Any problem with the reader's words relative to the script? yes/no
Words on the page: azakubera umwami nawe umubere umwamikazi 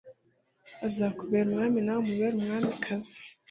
no